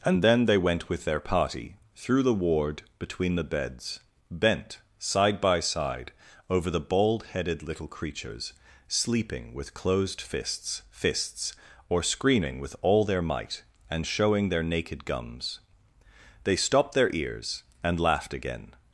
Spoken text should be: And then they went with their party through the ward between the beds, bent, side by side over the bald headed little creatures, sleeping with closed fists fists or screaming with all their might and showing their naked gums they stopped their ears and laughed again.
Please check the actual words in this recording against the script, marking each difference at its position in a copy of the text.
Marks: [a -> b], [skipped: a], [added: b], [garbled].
And then they went with their party through the ward between the beds, bent, side by side over the bald headed little creatures, sleeping with closed fists fists or screaming with all their might and showing their naked gums they stopped their ears and laughed again.